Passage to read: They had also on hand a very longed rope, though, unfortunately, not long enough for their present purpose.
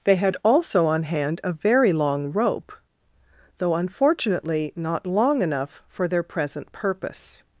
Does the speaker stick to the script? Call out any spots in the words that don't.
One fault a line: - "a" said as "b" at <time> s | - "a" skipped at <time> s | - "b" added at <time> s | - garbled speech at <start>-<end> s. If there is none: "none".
- "longed" said as "long" at 1.9 s